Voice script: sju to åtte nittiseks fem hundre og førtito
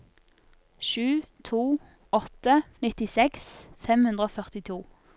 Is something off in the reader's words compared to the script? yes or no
no